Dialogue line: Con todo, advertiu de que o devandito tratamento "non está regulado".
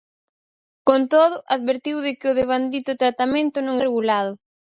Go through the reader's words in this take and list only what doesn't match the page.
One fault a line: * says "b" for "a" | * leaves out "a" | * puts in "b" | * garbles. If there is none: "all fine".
* leaves out "está"